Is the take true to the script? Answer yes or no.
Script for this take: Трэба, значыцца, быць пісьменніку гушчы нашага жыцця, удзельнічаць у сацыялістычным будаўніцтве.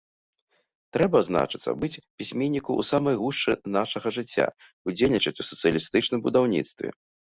no